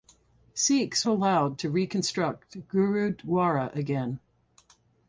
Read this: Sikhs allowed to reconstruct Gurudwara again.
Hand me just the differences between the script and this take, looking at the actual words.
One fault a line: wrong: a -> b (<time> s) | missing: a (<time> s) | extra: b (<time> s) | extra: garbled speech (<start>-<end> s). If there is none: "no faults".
no faults